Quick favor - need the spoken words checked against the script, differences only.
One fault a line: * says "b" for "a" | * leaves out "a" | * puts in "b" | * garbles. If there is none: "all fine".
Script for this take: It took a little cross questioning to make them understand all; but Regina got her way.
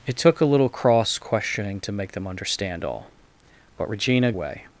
* leaves out "got her"